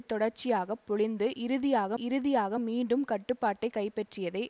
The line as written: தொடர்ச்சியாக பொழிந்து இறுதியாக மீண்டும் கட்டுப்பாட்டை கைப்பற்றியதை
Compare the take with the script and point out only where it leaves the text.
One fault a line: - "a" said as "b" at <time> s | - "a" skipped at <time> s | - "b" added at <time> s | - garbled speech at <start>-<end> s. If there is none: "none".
- "இறுதியாக" added at 2.0 s